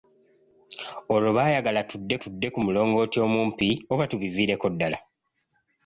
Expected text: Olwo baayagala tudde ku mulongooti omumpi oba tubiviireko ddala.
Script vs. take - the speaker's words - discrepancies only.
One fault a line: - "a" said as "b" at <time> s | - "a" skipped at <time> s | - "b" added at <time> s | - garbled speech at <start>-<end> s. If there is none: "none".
- "tudde" added at 2.2 s